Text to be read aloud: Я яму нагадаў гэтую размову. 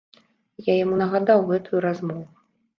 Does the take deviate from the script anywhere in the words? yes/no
no